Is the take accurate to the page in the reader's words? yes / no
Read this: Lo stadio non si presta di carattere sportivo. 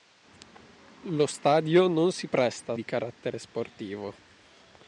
yes